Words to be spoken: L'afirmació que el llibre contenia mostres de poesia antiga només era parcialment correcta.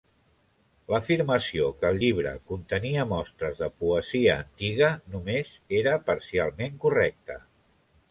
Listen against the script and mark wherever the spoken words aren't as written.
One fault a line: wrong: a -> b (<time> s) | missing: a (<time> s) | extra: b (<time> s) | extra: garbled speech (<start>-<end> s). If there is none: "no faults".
no faults